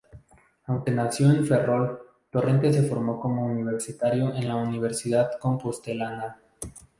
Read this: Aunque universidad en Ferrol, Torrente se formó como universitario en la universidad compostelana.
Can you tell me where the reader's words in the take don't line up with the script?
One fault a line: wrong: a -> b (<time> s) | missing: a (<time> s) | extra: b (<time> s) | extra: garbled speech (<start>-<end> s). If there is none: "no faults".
wrong: universidad -> nació (0.9 s)